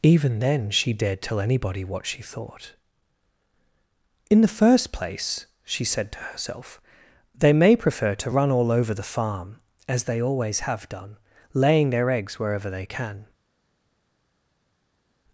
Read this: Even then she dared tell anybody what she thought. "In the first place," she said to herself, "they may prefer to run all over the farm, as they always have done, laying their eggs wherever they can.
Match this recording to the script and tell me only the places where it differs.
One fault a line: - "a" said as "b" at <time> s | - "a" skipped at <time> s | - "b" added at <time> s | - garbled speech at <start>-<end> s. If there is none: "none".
none